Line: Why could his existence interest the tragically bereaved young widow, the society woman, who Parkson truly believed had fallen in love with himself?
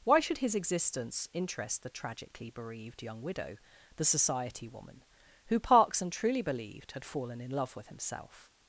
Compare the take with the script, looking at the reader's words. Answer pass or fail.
fail